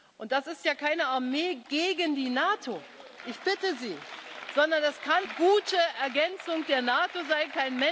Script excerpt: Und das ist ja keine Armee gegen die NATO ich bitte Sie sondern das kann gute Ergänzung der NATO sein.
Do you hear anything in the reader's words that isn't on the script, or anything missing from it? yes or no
no